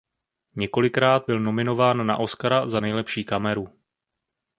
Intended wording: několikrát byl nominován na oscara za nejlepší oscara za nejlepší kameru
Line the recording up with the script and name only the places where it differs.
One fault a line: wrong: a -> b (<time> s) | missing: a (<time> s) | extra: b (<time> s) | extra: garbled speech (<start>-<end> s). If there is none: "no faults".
missing: oscara za nejlepší (3.2 s)